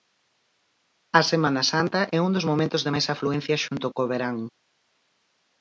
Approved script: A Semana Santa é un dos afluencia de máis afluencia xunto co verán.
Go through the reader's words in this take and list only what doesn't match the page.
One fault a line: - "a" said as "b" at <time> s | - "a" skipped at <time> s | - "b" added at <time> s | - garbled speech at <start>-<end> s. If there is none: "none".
- "afluencia" said as "momentos" at 2.5 s